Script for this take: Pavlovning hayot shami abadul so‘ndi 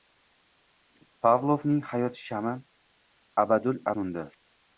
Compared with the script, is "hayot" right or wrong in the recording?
right